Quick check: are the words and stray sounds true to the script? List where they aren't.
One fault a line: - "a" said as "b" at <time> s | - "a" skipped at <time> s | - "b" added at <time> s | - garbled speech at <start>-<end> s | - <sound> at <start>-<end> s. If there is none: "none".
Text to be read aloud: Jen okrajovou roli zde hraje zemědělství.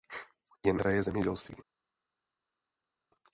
- "okrajovou roli zde" skipped at 0.8 s